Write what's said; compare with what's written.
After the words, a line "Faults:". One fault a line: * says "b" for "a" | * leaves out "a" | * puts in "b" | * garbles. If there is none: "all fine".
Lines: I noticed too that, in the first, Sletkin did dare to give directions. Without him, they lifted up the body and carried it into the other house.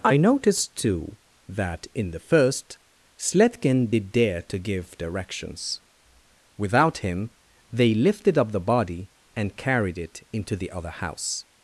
I noticed too that, in the first, Sletkin did dare to give directions. Without him, they lifted up the body and carried it into the other house.
Faults:
all fine